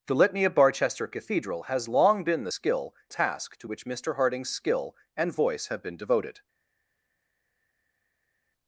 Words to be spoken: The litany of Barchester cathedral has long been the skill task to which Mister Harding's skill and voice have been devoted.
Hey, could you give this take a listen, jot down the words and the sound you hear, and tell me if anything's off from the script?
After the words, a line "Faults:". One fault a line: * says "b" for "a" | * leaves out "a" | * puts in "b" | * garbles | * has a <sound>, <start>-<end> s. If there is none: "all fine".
The litany of Barchester cathedral has long been the skill task to which Mister Harding's skill and voice have been devoted.
Faults:
all fine